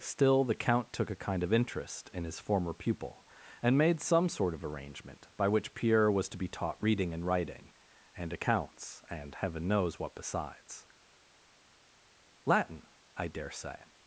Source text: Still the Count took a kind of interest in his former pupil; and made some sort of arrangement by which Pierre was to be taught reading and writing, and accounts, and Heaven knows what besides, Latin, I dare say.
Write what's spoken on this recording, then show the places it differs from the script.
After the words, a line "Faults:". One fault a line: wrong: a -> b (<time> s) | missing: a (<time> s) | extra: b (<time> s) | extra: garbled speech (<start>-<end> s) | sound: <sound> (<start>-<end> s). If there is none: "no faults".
Still the Count took a kind of interest in his former pupil; and made some sort of arrangement by which Pierre was to be taught reading and writing, and accounts, and Heaven knows what besides, Latin, I dare say.
Faults:
no faults